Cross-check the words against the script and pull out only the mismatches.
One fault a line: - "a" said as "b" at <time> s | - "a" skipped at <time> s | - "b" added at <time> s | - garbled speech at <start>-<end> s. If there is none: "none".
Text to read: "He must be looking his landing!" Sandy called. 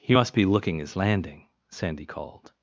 none